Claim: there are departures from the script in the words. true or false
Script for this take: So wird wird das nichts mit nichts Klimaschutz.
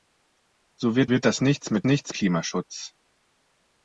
false